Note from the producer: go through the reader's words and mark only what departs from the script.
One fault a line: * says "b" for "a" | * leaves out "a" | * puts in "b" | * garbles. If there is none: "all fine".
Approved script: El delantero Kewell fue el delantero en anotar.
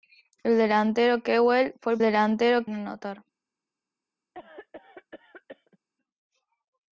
all fine